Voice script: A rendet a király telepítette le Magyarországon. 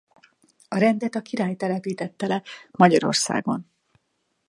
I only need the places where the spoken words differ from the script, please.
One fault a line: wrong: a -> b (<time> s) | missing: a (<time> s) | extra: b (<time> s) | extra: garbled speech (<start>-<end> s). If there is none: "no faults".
no faults